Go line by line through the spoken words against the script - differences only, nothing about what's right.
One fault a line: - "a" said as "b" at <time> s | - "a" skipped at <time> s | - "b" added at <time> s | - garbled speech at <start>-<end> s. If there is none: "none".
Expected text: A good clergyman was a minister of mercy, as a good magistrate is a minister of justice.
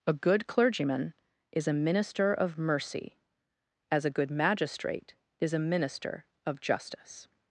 - "was" said as "is" at 1.5 s